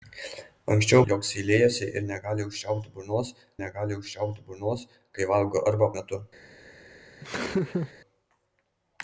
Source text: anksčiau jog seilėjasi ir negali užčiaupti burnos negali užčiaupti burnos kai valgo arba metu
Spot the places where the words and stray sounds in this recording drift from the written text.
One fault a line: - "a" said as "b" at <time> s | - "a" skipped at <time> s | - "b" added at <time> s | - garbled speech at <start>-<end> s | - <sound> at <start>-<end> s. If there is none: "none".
- laugh at 7.2-7.9 s